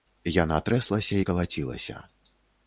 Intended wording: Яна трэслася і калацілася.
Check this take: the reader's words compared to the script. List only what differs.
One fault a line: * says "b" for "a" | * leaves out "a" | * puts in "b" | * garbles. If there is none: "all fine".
all fine